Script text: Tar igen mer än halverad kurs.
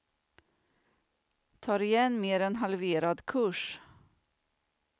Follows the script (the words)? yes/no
yes